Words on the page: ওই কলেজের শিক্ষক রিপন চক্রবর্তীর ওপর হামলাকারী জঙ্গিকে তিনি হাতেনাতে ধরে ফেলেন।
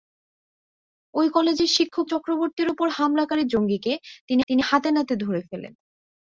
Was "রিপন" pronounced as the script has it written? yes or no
no